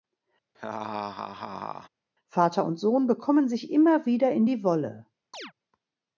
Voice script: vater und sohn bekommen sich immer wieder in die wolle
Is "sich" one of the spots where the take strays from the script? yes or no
no